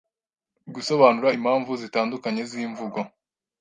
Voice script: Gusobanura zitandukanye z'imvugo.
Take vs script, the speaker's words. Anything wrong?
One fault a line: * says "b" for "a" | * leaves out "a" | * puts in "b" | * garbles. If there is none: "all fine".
* puts in "impamvu"